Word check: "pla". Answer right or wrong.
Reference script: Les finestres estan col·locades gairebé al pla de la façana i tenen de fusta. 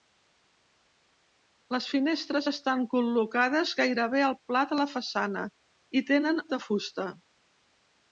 right